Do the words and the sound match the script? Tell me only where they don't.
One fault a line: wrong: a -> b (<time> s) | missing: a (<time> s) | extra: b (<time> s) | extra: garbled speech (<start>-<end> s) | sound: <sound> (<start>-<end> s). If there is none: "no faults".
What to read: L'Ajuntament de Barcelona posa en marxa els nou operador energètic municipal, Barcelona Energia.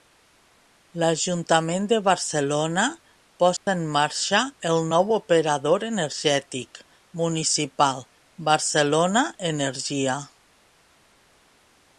sound: dropout (3.6-3.7 s)
wrong: els -> el (4.7 s)